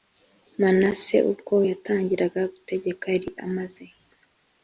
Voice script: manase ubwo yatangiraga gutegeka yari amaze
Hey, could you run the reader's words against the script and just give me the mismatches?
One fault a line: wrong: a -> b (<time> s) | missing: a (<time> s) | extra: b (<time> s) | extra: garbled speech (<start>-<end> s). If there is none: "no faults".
no faults